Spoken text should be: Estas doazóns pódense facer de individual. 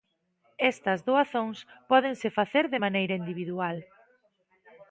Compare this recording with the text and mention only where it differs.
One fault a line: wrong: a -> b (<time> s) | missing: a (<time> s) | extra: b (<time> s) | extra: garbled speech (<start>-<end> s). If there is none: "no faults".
extra: maneira (2.8 s)